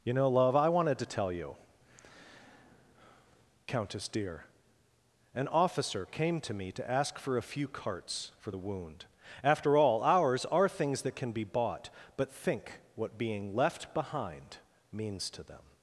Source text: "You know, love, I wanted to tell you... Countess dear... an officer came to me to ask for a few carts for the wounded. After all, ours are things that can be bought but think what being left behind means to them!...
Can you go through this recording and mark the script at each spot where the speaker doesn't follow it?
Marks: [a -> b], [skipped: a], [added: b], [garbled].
"You know, love, I wanted to tell you... Countess dear... an officer came to me to ask for a few carts for the [wounded. -> wound] After all, ours are things that can be bought but think what being left behind means to them!...